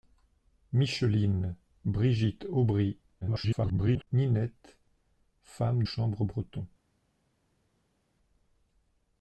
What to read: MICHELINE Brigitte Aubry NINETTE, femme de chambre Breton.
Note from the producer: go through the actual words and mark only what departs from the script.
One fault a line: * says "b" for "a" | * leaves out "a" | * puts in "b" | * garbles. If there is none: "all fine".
* garbles
* leaves out "de"